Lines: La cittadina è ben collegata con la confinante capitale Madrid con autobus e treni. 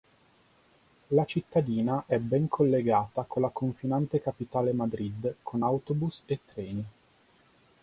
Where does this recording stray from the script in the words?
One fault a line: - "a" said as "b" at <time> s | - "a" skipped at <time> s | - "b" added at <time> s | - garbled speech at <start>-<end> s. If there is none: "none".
none